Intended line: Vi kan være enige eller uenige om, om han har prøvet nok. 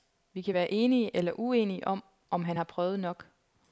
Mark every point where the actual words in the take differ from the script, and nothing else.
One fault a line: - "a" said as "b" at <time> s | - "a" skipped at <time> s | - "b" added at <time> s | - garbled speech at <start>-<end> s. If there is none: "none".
none